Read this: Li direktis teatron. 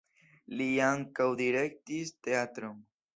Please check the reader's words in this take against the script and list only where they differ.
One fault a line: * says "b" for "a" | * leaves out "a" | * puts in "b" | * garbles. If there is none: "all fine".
* puts in "ankaŭ"